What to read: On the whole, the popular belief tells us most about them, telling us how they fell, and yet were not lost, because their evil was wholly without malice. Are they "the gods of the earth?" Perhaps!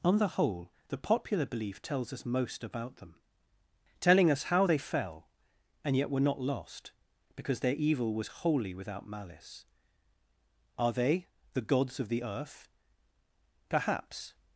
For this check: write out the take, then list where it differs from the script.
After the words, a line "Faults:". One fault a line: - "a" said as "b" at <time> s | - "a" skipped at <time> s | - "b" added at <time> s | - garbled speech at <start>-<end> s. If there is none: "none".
On the whole, the popular belief tells us most about them, telling us how they fell, and yet were not lost, because their evil was wholly without malice. Are they "the gods of the earth?" Perhaps!
Faults:
none